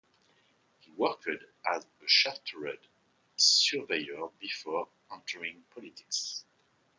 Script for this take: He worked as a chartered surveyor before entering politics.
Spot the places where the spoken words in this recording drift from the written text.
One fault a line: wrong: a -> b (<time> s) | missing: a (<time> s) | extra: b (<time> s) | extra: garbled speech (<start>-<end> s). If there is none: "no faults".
no faults